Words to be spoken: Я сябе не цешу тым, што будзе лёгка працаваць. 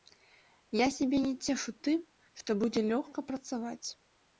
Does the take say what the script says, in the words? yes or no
yes